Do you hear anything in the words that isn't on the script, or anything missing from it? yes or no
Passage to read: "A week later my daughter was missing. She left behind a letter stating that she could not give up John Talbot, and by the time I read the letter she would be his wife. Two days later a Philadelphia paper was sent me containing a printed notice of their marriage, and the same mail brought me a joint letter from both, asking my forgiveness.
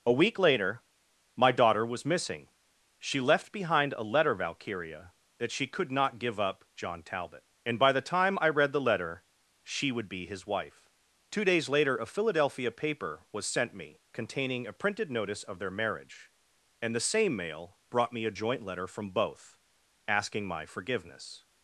yes